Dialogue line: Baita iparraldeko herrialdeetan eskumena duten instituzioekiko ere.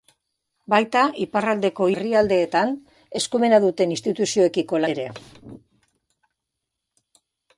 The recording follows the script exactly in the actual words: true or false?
true